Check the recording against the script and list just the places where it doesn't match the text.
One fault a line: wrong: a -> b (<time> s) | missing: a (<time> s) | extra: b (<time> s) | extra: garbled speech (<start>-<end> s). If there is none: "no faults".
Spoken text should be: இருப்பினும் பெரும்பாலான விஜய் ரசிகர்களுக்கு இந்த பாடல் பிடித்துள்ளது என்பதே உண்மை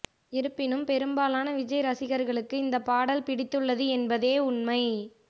no faults